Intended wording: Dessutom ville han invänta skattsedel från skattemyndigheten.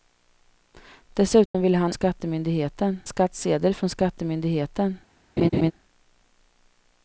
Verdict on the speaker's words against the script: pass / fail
fail